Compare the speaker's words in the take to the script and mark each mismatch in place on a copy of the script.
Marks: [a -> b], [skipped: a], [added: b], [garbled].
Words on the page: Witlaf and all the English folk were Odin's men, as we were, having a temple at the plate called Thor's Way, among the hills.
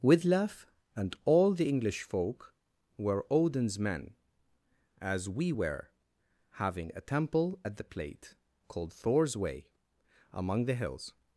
Witlaf and all the English folk were Odin's men, as we were, having a temple at the plate called Thor's Way, among the hills.